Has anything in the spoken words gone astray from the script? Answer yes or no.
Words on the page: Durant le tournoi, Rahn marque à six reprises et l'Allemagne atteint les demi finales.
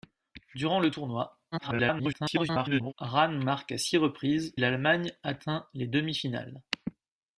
yes